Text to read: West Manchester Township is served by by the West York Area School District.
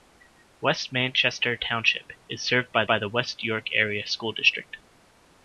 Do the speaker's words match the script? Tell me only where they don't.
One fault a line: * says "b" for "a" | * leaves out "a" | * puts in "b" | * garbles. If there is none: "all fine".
all fine